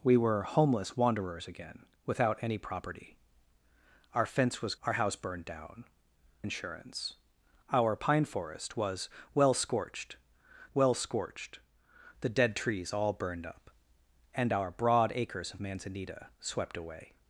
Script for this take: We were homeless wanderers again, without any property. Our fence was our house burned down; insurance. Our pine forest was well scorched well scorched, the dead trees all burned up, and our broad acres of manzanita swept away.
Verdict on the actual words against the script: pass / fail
pass